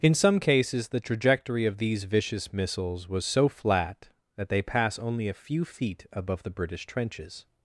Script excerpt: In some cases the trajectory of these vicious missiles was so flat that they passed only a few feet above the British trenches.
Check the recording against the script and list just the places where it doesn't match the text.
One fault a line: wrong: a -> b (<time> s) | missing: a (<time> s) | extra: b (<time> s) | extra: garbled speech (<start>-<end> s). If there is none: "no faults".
wrong: passed -> pass (4.6 s)